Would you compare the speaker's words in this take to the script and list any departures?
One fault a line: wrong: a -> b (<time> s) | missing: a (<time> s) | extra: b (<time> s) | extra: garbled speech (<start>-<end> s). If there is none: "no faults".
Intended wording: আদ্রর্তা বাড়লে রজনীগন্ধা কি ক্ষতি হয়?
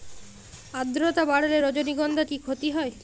no faults